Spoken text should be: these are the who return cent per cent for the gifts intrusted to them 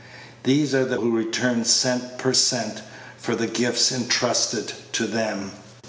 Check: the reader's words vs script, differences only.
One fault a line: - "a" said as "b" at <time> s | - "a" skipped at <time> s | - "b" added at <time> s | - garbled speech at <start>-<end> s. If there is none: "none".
none